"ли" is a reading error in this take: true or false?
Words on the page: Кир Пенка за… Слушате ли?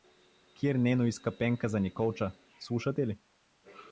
false